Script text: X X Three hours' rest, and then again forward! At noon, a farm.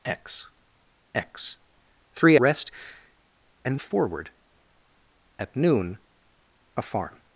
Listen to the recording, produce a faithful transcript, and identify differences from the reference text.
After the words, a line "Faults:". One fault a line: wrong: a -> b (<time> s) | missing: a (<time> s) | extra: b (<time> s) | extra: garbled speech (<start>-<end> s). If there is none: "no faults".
X X Three' rest, and forward! At noon, a farm.
Faults:
missing: hours (2.4 s)
missing: then again (3.8 s)